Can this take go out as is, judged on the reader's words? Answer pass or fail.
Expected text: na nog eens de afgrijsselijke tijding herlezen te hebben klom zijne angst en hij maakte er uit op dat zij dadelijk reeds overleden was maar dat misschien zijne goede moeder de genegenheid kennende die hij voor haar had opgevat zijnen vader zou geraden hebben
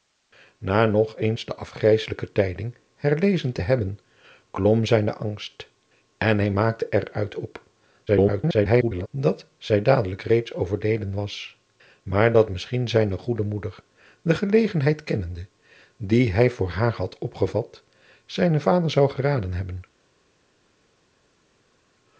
fail